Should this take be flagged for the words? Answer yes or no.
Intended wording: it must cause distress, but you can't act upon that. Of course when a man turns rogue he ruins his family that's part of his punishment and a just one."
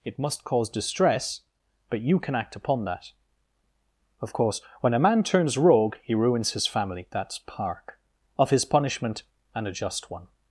yes